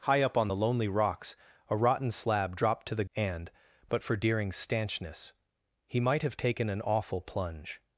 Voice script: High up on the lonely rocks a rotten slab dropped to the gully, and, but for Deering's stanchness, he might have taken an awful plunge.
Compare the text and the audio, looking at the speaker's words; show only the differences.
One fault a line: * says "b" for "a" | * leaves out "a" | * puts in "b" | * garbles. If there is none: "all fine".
* leaves out "gully"